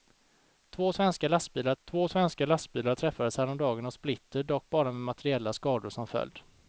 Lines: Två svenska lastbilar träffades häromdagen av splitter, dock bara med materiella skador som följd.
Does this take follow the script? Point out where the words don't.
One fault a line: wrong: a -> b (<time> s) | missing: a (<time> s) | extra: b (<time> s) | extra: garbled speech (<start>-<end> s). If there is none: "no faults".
extra: två svenska lastbilar (1.8 s)